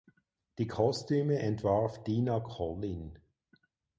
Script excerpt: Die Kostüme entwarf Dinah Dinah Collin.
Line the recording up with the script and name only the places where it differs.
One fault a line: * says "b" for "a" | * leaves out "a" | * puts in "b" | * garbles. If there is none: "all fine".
* leaves out "Dinah"